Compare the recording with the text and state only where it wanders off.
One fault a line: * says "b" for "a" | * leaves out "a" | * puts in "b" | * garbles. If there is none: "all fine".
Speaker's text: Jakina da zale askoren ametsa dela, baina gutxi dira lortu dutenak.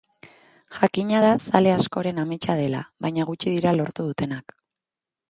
all fine